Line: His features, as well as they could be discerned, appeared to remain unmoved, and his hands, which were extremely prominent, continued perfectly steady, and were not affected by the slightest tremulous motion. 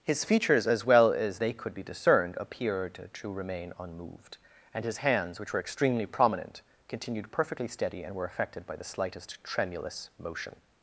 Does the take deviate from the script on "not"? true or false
true